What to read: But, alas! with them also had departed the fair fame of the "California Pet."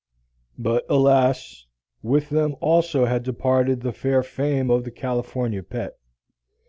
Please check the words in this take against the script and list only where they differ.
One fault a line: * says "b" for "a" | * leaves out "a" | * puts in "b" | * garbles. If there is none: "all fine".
all fine